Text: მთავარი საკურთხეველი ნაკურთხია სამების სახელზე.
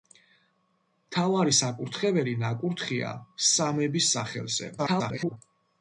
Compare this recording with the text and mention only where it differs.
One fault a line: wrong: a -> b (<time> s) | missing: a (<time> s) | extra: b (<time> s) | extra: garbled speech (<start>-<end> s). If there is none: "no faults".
extra: garbled speech (4.8-5.4 s)